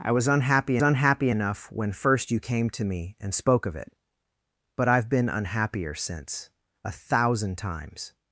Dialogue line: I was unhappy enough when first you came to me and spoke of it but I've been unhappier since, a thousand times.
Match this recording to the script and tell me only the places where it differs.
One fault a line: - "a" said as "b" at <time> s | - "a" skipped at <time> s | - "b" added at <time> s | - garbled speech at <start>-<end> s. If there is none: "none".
- "unhappy" added at 0.8 s